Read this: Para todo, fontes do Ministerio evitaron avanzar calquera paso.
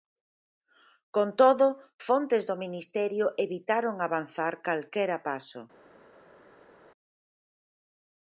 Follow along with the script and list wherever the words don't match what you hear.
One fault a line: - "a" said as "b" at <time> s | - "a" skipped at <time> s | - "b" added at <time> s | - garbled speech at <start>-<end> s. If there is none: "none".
- "Para" said as "Con" at 1.1 s